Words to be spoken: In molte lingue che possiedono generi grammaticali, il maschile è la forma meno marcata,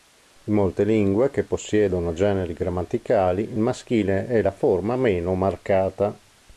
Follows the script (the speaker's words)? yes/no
yes